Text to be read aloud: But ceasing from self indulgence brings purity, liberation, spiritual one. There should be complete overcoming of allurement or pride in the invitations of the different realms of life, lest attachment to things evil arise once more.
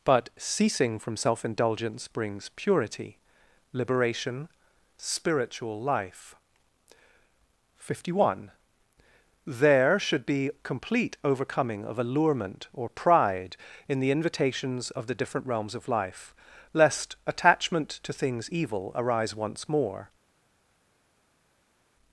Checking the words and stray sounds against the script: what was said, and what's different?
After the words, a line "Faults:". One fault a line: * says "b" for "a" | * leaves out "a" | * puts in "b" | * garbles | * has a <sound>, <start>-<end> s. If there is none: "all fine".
But ceasing from self indulgence brings purity, liberation, spiritual life. Fifty one. There should be complete overcoming of allurement or pride in the invitations of the different realms of life, lest attachment to things evil arise once more.
Faults:
* puts in "life Fifty"